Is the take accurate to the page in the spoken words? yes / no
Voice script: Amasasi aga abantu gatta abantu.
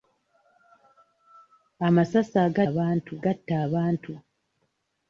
yes